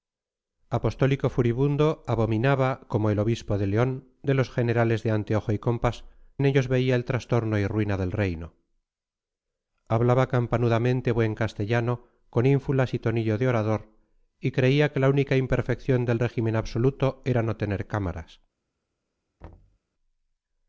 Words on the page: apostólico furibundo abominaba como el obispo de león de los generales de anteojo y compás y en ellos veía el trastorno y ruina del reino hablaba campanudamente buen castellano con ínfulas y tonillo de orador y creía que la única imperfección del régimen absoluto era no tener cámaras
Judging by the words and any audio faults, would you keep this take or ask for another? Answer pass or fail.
fail